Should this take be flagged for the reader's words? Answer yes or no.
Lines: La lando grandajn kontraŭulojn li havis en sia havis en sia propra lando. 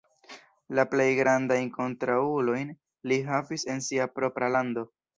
yes